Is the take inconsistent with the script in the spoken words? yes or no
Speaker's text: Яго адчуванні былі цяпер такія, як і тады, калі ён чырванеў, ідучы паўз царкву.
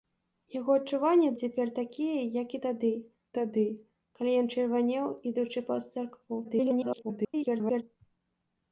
yes